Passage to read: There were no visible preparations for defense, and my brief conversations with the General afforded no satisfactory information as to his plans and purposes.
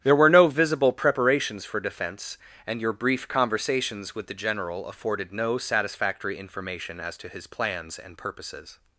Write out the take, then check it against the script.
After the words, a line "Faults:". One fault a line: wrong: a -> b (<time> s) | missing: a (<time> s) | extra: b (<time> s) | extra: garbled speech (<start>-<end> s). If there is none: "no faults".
There were no visible preparations for defense, and your brief conversations with the General afforded no satisfactory information as to his plans and purposes.
Faults:
wrong: my -> your (2.8 s)